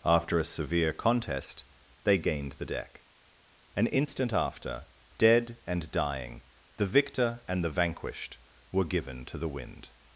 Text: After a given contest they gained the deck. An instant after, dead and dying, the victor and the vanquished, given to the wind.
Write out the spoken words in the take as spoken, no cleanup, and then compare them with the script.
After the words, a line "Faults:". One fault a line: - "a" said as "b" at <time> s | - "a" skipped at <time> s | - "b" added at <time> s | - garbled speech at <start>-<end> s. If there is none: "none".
After a severe contest they gained the deck. An instant after, dead and dying, the victor and the vanquished, were given to the wind.
Faults:
- "given" said as "severe" at 0.4 s
- "were" added at 8.7 s